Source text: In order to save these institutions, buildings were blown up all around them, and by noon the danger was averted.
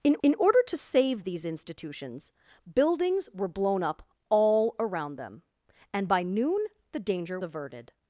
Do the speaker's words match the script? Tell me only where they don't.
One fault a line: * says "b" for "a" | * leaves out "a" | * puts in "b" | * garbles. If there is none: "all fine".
* puts in "in"
* leaves out "was"